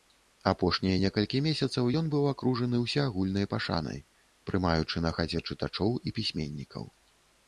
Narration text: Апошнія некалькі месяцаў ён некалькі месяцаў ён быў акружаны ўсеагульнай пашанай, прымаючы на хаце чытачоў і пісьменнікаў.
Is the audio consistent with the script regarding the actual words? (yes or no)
no